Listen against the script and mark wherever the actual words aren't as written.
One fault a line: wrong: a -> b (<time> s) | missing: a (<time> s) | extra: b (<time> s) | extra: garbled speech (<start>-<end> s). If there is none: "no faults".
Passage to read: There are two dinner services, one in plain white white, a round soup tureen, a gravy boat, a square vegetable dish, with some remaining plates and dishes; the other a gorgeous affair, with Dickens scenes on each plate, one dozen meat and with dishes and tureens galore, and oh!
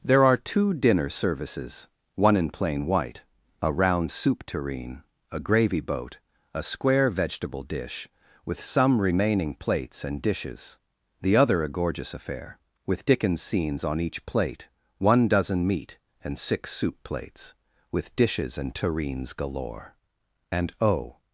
missing: white (3.2 s)
extra: six soup plates (16.4 s)